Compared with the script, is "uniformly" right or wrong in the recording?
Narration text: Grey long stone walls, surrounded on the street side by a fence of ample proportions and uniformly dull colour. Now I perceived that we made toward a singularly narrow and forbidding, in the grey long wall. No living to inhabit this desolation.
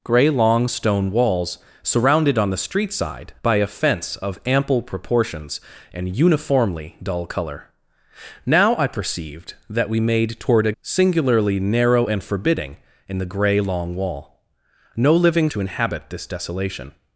right